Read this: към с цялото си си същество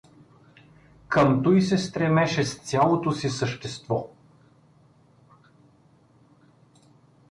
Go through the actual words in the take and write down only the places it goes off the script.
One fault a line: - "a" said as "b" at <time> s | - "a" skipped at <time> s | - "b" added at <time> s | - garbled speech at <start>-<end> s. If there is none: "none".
- "туй се стремеше" added at 1.4 s
- "си" skipped at 3.3 s